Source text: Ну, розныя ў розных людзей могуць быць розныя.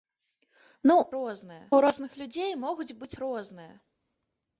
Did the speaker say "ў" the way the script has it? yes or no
yes